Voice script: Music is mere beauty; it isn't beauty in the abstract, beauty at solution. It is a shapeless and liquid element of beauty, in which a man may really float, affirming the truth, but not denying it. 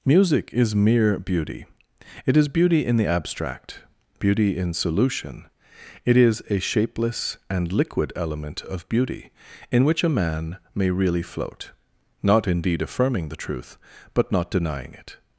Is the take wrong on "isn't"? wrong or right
wrong